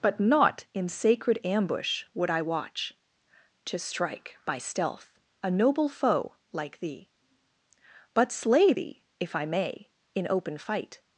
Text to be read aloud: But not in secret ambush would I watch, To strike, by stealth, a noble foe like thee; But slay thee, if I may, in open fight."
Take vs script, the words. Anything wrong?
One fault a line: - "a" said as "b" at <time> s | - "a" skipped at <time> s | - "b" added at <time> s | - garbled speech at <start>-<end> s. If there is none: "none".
- "secret" said as "sacred" at 0.9 s